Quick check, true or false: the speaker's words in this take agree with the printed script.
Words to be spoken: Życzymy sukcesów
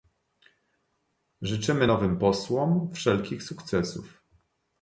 false